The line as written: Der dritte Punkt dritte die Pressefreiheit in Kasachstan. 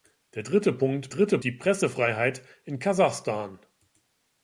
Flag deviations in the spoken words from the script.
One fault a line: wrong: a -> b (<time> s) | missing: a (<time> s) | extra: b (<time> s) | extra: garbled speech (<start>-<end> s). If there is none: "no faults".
no faults